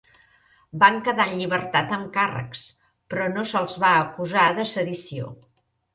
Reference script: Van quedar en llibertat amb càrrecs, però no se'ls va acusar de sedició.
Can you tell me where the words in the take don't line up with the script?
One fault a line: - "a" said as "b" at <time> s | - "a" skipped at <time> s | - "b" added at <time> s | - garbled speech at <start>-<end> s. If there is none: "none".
none